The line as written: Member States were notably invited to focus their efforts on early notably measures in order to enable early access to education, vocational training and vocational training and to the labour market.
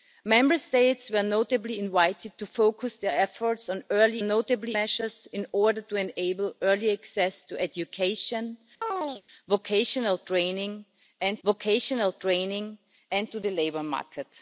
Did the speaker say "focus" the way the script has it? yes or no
yes